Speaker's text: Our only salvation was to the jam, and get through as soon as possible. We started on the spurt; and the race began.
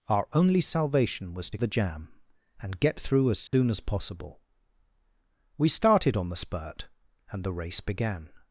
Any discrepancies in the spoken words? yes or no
no